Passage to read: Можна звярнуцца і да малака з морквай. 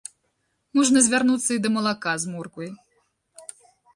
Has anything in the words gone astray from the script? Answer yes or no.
no